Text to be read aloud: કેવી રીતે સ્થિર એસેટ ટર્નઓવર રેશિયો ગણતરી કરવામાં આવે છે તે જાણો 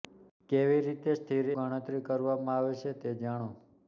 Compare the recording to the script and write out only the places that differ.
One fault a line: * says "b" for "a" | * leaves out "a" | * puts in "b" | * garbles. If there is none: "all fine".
* leaves out "એસેટ ટર્નઓવર રેશિયો"